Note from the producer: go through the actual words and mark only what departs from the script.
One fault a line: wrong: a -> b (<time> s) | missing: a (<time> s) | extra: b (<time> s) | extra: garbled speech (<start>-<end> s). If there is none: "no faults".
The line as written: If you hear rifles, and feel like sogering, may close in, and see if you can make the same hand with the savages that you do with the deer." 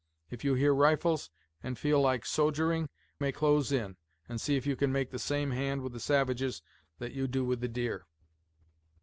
no faults